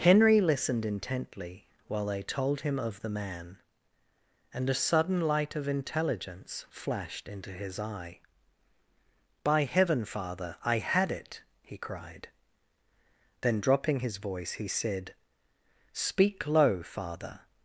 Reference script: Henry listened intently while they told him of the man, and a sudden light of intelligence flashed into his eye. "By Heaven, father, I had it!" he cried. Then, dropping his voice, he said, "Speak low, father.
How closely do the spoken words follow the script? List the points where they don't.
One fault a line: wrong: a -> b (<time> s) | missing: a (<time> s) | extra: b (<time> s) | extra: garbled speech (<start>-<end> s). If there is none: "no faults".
no faults